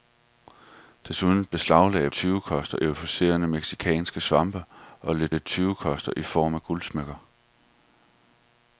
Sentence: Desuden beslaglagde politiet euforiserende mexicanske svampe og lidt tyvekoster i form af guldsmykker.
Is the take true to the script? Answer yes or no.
no